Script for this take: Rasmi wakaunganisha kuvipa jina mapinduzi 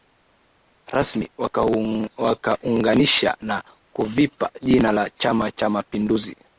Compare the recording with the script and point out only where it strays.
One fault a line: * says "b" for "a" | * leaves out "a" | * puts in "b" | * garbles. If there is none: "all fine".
* puts in "na"
* puts in "la chama cha"